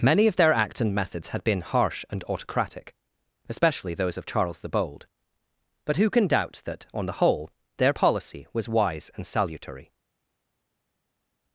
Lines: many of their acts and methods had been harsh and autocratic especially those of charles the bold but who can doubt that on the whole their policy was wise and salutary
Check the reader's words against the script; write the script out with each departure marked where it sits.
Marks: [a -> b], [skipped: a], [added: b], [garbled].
many of their acts and methods had been harsh and autocratic especially those of charles the bold but who can doubt that on the whole their policy was wise and salutary